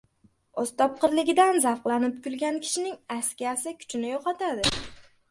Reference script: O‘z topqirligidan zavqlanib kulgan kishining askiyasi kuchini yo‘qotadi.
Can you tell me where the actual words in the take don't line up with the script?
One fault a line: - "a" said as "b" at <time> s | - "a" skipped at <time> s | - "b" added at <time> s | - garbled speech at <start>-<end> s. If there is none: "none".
none